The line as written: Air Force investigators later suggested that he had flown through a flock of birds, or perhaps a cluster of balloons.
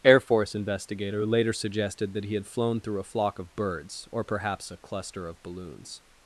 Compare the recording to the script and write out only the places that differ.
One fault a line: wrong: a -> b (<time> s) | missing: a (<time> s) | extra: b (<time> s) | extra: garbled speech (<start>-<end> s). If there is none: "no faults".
wrong: investigators -> investigator (0.6 s)